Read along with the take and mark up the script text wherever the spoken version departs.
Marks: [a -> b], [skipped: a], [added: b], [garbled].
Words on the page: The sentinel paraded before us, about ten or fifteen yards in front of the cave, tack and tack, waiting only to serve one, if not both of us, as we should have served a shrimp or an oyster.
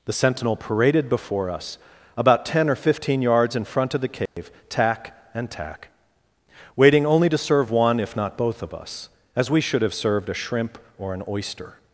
The sentinel paraded before us, about ten or fifteen yards in front of the cave, tack and tack, waiting only to serve one, if not both of us, as we should have served a shrimp or an oyster.